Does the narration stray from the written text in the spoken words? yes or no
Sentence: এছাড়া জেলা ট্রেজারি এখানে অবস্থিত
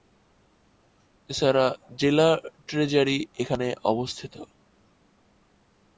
no